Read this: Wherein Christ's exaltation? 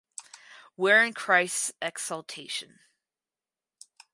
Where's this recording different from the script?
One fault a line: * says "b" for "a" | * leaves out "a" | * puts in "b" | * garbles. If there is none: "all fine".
all fine